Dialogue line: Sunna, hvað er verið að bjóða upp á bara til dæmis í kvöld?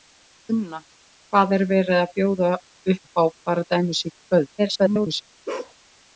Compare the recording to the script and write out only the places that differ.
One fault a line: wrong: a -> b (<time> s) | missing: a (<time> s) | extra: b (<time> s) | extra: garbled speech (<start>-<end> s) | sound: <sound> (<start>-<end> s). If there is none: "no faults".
missing: til (3.7 s)
extra: garbled speech (4.6-5.2 s)
sound: bark (5.5-5.8 s)